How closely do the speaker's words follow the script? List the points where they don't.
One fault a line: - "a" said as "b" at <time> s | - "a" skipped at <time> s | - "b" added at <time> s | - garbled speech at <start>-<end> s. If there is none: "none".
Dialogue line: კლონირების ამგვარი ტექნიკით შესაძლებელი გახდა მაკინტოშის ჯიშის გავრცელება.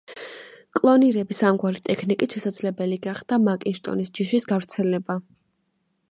none